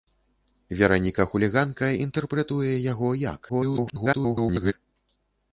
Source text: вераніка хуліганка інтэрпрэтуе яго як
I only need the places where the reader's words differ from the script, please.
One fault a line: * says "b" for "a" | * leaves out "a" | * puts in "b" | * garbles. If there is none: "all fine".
* garbles